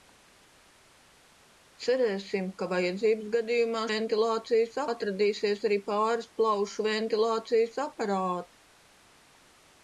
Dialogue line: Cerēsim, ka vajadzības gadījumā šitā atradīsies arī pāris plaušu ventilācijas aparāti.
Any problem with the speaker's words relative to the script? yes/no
yes